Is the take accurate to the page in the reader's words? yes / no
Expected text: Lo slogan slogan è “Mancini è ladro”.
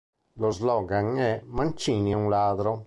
no